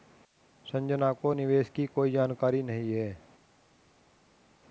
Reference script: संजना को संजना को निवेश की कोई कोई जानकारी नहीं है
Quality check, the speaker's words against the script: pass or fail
fail